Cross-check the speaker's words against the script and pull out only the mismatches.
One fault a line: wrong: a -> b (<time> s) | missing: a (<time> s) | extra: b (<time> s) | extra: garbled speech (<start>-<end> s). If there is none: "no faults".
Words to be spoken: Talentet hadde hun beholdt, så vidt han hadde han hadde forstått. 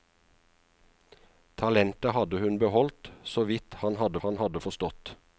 no faults